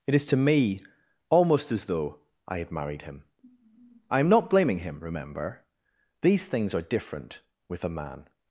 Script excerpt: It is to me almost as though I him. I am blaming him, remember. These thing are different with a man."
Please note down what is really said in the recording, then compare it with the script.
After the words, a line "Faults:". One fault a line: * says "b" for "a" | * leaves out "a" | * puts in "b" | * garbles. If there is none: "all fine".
It is to me almost as though I had married him. I am not blaming him, remember. These things are different with a man."
Faults:
* puts in "had married"
* puts in "not"
* says "things" for "thing"